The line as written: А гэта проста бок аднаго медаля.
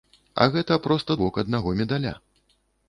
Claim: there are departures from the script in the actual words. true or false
false